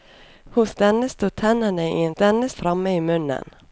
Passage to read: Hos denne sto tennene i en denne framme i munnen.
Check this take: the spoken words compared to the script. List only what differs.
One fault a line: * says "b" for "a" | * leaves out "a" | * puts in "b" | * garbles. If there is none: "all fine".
all fine